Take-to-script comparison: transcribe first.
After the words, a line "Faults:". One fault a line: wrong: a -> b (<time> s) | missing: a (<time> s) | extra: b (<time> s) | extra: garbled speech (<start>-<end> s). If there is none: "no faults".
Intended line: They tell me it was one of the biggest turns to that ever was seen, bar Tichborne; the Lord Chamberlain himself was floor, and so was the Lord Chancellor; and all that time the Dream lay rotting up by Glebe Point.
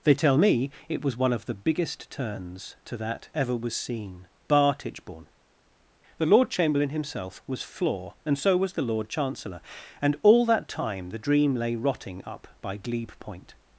They tell me it was one of the biggest turns to that ever was seen, bar Tichborne; the Lord Chamberlain himself was floor, and so was the Lord Chancellor; and all that time the Dream lay rotting up by Glebe Point.
Faults:
no faults